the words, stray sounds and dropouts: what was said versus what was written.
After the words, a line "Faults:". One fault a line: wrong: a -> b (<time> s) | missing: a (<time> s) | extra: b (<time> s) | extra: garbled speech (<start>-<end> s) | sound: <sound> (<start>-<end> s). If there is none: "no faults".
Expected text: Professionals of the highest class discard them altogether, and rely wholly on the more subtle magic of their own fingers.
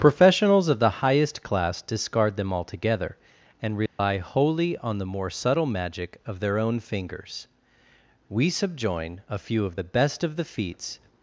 Professionals of the highest class discard them altogether, and rely wholly on the more subtle magic of their own fingers. We subjoin a few of the best of the feats
Faults:
sound: dropout (3.9-4.0 s)
extra: We subjoin a few of the best of the feats (8.3 s)